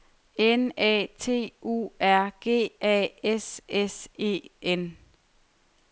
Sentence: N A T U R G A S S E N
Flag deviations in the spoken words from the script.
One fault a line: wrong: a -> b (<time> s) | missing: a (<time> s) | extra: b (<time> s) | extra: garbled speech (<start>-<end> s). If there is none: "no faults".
no faults